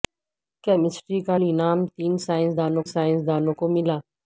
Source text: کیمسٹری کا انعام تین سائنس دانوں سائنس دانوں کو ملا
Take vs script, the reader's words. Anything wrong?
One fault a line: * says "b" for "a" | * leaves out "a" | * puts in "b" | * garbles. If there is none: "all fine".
all fine